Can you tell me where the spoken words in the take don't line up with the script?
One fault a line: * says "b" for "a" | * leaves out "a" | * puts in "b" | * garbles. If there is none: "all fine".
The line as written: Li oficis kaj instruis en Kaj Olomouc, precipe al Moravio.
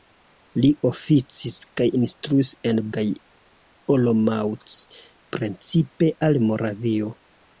all fine